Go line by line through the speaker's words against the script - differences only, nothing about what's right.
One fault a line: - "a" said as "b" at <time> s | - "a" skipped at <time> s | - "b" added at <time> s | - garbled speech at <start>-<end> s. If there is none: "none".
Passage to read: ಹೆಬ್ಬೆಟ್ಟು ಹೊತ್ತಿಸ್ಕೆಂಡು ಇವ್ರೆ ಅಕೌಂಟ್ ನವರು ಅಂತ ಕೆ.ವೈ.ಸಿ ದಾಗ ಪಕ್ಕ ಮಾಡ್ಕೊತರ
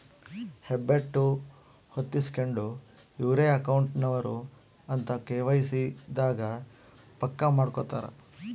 none